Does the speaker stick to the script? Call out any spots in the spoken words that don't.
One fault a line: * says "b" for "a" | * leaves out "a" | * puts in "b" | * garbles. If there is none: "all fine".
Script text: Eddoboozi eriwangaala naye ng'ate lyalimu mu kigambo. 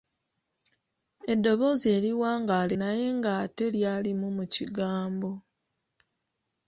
all fine